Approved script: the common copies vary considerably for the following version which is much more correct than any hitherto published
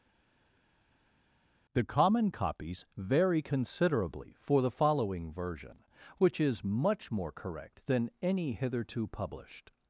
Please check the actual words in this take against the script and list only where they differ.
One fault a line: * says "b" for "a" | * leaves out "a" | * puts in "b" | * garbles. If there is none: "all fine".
all fine